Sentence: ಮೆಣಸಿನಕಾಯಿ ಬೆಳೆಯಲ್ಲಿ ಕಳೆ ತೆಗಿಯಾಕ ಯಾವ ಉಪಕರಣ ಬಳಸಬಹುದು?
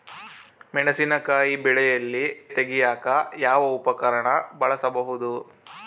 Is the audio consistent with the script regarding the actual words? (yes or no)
no